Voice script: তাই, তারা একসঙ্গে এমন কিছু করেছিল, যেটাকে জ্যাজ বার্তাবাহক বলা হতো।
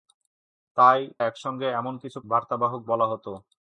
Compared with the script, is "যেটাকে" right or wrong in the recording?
wrong